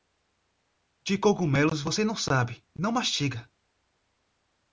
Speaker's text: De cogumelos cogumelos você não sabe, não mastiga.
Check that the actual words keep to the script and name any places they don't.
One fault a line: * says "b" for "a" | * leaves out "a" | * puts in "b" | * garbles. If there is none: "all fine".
* leaves out "cogumelos"